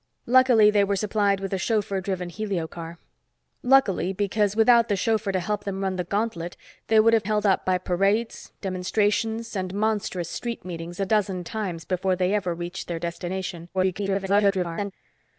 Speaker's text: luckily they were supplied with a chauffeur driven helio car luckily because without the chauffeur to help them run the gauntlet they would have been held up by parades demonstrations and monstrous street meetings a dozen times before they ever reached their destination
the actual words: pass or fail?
fail